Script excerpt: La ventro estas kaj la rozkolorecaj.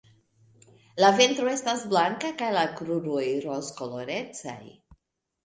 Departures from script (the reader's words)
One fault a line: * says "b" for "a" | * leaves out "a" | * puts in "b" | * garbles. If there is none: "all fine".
* puts in "blanka"
* puts in "kruroj"